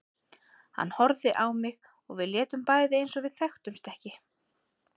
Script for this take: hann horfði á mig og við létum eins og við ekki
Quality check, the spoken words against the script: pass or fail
fail